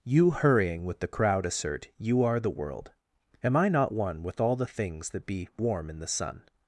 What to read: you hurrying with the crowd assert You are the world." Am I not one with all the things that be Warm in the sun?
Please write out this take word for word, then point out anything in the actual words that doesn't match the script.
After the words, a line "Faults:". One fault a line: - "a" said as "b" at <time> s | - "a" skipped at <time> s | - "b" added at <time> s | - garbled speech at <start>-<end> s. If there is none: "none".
you hurrying with the crowd assert You are the world." Am I not one with all the things that be Warm in the sun?
Faults:
none